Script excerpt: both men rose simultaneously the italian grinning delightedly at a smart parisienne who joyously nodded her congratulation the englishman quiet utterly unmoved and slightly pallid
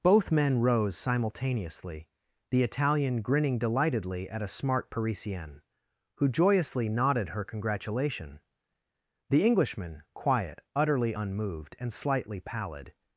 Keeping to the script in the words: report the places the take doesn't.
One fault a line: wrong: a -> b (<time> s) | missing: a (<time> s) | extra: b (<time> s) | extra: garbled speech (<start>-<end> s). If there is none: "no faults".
no faults